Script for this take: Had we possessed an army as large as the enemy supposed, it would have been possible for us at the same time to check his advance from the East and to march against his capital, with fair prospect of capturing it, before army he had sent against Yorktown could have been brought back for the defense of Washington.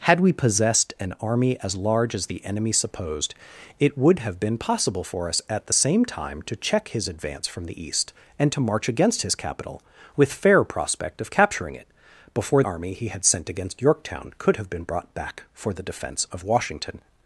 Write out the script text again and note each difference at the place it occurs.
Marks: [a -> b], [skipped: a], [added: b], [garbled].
Had we possessed an army as large as the enemy supposed, it would have been possible for us at the same time to check his advance from the East and to march against his capital, with fair prospect of capturing it, before army he had sent against Yorktown could have been brought back for the defense of Washington.